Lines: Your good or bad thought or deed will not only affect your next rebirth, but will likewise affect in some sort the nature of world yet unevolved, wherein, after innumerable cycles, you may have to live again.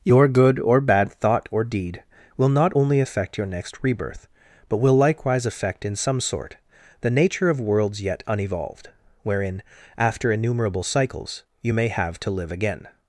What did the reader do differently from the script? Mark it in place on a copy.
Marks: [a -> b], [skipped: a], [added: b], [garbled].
Your good or bad thought or deed will not only affect your next rebirth, but will likewise affect in some sort the nature of [world -> worlds] yet unevolved, wherein, after innumerable cycles, you may have to live again.